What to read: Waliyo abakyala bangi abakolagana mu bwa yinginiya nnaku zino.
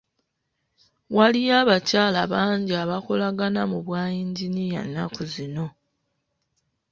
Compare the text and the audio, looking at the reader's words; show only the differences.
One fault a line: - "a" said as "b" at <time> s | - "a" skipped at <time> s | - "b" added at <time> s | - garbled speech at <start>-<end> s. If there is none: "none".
none